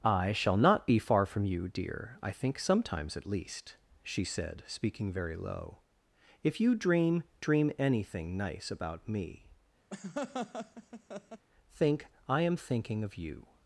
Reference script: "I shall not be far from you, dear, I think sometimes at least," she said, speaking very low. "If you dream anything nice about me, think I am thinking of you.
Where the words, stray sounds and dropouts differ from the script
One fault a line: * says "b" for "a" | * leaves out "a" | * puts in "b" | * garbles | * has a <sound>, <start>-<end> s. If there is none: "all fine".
* puts in "dream"
* has a laugh, 9.9-11.5 s